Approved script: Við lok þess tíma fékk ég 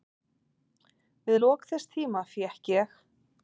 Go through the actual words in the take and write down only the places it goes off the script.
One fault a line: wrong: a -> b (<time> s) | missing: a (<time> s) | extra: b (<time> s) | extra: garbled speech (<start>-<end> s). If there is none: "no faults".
no faults